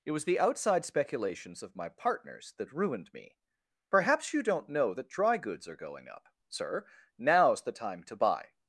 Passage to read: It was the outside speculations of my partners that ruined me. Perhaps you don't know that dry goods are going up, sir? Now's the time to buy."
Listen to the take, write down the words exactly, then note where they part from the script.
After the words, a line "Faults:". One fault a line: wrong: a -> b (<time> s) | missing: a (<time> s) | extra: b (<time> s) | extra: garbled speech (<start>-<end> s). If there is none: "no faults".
It was the outside speculations of my partners that ruined me. Perhaps you don't know that dry goods are going up, sir? Now's the time to buy."
Faults:
no faults